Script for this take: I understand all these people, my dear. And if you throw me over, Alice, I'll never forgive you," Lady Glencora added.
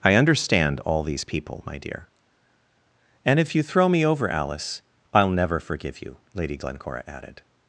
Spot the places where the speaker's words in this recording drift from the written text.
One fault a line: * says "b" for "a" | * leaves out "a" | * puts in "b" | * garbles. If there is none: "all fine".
all fine